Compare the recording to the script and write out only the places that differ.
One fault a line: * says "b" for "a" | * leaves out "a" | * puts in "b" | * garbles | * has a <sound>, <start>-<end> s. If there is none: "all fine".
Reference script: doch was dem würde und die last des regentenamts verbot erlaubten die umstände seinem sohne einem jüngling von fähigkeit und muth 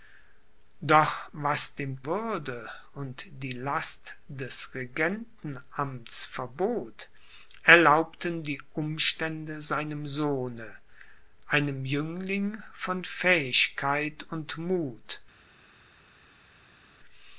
all fine